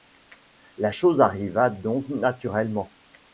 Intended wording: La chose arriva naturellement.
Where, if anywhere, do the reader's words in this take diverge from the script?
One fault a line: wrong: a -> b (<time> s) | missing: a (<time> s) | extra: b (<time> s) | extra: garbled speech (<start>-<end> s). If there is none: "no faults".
extra: donc (1.7 s)